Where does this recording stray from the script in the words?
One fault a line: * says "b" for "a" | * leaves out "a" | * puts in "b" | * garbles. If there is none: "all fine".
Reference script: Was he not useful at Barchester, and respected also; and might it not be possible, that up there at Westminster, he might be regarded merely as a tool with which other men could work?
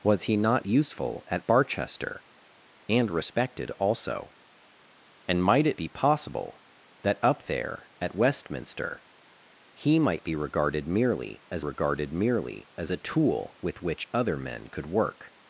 * leaves out "not"
* puts in "regarded merely as"